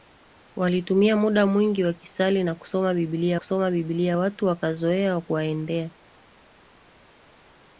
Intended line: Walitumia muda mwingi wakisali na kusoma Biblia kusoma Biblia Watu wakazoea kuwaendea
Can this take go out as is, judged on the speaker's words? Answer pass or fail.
pass